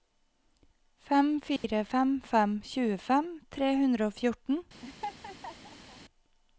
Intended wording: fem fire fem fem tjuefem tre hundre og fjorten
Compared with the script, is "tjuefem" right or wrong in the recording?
right